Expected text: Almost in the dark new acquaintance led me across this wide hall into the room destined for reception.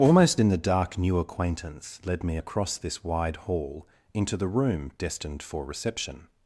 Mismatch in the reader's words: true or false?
false